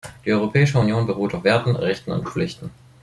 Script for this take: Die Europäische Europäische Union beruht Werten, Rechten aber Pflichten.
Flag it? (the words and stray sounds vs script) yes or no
yes